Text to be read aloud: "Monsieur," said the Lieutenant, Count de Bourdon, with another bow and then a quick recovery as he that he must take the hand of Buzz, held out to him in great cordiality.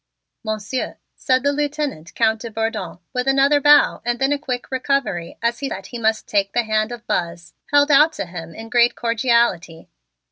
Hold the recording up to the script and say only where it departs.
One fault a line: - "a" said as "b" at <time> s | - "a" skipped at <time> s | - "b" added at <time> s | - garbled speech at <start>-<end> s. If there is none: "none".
none